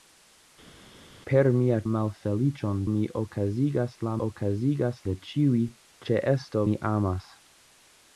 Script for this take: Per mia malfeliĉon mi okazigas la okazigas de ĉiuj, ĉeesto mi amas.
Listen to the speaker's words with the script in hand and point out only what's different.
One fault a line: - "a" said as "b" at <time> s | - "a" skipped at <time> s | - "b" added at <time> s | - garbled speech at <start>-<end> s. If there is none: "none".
none